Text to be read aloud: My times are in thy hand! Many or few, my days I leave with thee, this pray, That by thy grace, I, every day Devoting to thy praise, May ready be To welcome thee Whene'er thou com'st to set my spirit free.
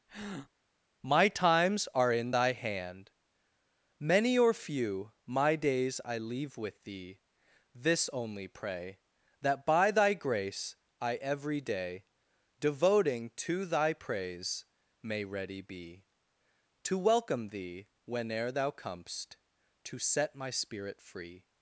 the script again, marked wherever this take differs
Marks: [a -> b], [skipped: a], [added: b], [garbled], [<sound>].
[breath] My times are in thy hand! Many or few, my days I leave with thee, this [added: only] pray, That by thy grace, I, every day Devoting to thy praise, May ready be To welcome thee Whene'er thou com'st to set my spirit free.